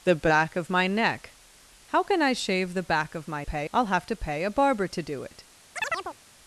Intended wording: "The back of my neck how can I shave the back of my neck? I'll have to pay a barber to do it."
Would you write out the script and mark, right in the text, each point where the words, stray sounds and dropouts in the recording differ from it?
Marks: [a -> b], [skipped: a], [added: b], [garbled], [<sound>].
"The back of my neck how can I shave the back of my [neck? -> pay] I'll have to pay a barber to do it." [chirp]